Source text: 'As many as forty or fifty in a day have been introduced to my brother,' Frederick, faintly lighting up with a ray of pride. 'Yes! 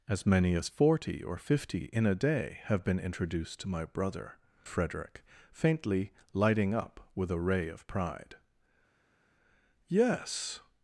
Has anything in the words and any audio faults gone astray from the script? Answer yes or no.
no